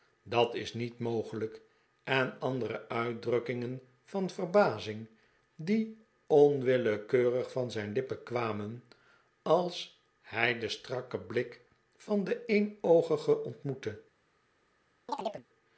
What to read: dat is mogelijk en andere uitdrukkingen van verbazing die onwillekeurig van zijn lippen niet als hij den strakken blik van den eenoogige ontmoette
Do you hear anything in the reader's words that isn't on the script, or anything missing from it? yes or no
yes